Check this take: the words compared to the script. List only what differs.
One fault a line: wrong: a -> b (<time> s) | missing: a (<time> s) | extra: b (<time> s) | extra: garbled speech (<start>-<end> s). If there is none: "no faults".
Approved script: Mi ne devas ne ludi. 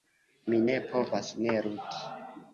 wrong: devas -> povas (0.9 s)